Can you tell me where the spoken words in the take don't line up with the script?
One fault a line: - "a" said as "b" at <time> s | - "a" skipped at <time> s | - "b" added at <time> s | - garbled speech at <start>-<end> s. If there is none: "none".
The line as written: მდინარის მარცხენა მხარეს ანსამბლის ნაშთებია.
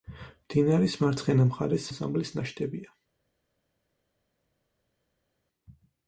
none